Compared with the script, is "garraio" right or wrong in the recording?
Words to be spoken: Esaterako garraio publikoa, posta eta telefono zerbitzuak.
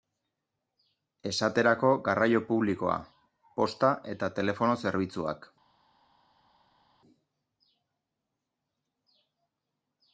right